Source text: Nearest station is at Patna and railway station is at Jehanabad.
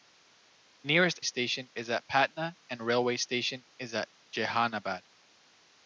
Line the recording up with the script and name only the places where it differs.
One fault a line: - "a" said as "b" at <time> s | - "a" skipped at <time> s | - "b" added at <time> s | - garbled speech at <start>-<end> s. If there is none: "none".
none